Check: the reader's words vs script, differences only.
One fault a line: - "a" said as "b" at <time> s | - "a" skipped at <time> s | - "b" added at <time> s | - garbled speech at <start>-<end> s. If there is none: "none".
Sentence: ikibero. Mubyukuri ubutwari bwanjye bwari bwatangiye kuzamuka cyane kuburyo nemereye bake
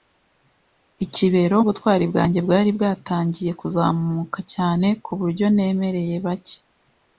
- "Mubyukuri" skipped at 1.6 s